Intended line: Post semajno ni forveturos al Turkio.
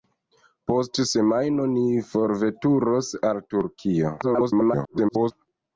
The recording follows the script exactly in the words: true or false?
false